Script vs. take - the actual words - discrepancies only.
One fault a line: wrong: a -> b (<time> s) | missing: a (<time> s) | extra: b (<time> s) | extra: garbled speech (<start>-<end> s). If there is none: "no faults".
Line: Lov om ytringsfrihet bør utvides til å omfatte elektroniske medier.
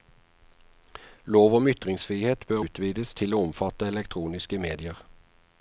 no faults